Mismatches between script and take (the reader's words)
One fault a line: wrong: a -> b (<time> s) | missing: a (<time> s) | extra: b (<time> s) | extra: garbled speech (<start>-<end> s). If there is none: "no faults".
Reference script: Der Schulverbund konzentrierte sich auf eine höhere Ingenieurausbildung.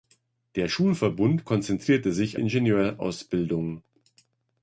missing: auf eine höhere (2.4 s)